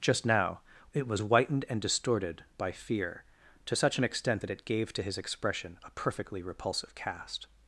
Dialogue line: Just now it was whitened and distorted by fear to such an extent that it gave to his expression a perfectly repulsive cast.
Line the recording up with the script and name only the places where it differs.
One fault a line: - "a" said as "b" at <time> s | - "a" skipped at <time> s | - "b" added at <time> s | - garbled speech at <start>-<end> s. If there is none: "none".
none